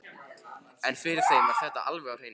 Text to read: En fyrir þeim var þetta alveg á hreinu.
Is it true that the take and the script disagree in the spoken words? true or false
false